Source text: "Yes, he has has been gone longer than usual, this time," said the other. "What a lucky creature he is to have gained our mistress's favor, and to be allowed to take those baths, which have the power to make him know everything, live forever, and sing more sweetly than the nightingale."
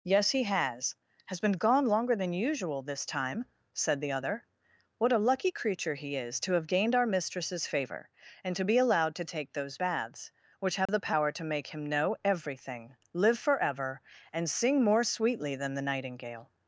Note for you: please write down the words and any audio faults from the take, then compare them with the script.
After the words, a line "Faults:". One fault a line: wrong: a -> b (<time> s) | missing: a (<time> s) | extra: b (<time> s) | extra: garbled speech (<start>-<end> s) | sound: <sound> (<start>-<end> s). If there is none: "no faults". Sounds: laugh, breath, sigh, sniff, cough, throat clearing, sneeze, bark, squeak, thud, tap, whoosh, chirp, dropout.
"Yes, he has has been gone longer than usual, this time," said the other. "What a lucky creature he is to have gained our mistress's favor, and to be allowed to take those baths, which have the power to make him know everything, live forever, and sing more sweetly than the nightingale."
Faults:
sound: dropout (10.9-10.9 s)